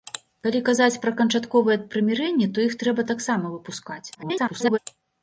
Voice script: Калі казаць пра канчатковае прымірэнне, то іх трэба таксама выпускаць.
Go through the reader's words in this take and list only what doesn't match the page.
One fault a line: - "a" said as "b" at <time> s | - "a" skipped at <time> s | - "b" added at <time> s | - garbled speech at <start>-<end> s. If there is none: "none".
- garbled speech at 4.1-4.8 s